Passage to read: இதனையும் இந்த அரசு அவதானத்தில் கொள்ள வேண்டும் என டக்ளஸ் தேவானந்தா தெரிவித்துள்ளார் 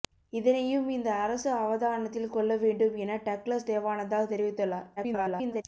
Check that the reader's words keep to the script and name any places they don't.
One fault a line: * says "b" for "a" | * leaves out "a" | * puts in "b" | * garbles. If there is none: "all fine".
* garbles